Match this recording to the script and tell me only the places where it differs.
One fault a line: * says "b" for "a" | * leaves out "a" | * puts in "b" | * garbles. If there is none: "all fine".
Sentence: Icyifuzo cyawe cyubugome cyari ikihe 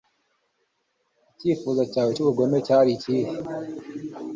all fine